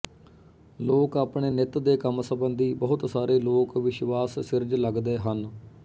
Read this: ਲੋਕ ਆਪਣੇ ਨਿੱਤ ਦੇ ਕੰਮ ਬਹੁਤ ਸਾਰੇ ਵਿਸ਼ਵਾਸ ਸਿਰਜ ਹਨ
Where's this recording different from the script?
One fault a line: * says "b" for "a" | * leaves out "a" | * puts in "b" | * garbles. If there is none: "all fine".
* puts in "ਸੰਬੰਧੀ"
* puts in "ਲੋਕ"
* puts in "ਲਗਦੈ"